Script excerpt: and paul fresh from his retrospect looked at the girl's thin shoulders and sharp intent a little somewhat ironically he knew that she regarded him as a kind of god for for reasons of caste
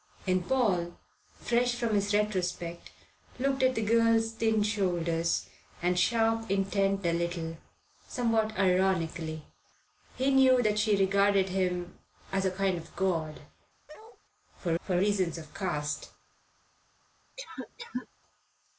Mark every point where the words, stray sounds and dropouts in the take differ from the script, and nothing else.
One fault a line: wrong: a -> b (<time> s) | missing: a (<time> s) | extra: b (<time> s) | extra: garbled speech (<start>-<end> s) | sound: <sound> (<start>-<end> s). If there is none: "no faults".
sound: bark (13.9-14.2 s)
sound: cough (17.4-18.1 s)